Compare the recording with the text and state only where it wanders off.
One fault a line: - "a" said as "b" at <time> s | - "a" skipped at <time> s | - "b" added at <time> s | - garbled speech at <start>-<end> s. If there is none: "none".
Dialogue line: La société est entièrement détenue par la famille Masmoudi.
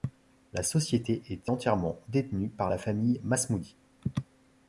none